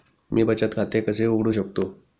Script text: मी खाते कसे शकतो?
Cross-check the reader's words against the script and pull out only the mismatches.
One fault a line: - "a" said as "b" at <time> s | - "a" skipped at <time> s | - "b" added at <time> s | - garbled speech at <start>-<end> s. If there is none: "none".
- "बचत" added at 0.4 s
- "उघडू" added at 1.3 s